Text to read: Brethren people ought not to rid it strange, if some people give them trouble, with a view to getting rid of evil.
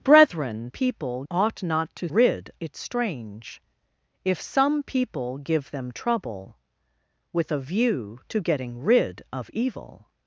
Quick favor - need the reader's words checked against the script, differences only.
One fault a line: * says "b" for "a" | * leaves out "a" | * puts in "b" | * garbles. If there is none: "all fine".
all fine